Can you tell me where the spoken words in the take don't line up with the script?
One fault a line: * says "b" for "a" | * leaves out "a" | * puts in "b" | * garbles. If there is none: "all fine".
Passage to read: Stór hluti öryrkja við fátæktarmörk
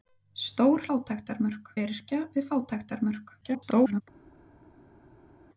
* says "fátæktarmörk" for "hluti"
* garbles